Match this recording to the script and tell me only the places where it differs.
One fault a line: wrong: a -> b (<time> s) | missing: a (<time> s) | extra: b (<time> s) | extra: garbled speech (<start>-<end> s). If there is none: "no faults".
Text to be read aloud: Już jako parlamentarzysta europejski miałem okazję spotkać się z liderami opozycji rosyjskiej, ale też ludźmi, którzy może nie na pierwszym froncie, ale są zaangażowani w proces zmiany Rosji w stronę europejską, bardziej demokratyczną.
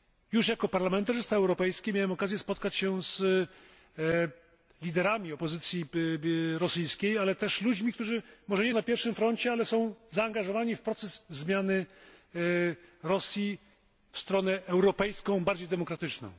no faults